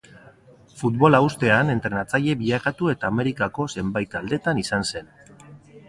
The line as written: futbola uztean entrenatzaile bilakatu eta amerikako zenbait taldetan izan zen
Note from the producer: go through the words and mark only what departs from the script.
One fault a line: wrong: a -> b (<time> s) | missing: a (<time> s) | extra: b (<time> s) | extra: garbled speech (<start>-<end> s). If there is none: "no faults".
no faults